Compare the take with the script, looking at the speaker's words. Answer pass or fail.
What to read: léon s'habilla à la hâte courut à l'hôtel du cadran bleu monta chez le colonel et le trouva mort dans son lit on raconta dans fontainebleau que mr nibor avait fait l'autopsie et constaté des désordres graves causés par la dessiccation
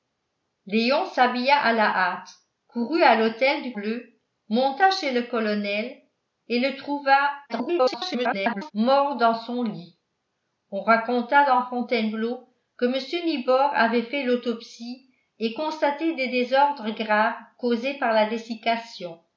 fail